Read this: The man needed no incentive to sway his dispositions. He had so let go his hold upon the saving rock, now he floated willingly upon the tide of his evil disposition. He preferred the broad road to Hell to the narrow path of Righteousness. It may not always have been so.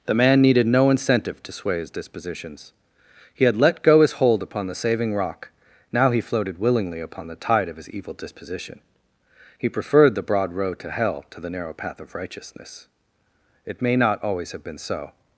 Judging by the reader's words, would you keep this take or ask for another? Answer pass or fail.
fail